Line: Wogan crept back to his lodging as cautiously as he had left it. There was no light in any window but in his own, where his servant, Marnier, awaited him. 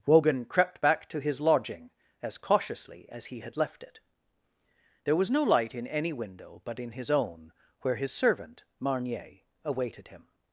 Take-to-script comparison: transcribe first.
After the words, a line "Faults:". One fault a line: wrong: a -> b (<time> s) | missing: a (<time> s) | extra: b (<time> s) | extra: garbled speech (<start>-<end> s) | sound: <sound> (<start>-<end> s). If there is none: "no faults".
Wogan crept back to his lodging as cautiously as he had left it. There was no light in any window but in his own, where his servant, Marnier, awaited him.
Faults:
no faults